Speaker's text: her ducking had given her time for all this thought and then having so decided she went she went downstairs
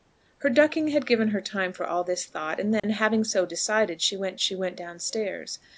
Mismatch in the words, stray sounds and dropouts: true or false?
true